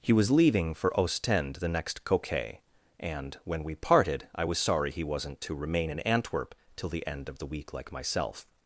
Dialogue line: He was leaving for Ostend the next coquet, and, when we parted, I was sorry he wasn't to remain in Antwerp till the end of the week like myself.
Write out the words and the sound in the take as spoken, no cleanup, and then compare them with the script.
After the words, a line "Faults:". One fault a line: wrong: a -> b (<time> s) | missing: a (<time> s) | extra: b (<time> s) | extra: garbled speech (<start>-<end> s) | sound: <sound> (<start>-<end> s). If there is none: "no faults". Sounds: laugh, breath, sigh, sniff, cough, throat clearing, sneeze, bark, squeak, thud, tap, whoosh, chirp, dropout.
He was leaving for Ostend the next coquet, and, when we parted, I was sorry he wasn't to remain in Antwerp till the end of the week like myself.
Faults:
no faults